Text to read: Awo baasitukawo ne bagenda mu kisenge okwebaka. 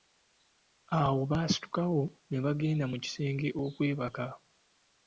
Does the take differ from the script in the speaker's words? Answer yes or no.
no